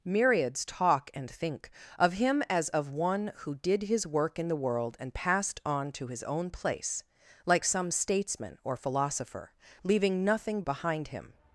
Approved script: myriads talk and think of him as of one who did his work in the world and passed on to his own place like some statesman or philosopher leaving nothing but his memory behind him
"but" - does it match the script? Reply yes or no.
no